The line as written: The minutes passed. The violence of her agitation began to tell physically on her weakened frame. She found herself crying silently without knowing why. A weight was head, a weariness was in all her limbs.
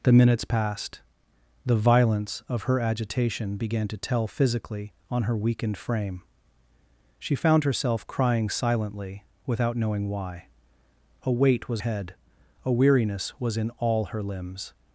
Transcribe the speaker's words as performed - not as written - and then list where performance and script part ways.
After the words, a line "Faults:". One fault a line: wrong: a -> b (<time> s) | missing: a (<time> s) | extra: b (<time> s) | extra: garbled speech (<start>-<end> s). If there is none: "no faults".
The minutes passed. The violence of her agitation began to tell physically on her weakened frame. She found herself crying silently without knowing why. A weight was head, a weariness was in all her limbs.
Faults:
no faults